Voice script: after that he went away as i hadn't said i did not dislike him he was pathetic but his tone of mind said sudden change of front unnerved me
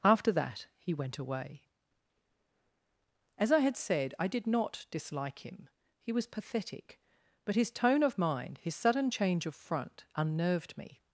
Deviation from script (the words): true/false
true